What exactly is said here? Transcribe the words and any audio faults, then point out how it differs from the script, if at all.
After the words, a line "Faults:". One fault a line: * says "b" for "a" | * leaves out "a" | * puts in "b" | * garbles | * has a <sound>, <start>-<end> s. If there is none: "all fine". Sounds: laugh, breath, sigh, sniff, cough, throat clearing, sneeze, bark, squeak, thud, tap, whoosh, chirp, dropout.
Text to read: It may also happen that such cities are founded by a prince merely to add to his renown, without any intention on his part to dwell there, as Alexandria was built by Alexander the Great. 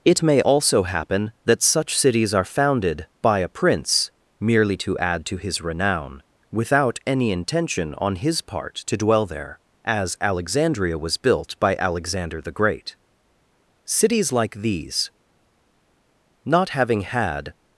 It may also happen that such cities are founded by a prince merely to add to his renown, without any intention on his part to dwell there, as Alexandria was built by Alexander the Great. Cities like these, not having had
Faults:
* puts in "Cities like these not having had"